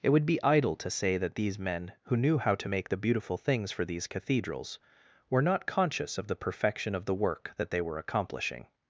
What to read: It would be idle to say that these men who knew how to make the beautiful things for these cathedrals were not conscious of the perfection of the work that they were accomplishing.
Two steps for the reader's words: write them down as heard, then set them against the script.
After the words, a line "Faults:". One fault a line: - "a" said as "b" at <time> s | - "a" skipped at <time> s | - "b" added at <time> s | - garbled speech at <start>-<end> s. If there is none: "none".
It would be idle to say that these men who knew how to make the beautiful things for these cathedrals were not conscious of the perfection of the work that they were accomplishing.
Faults:
none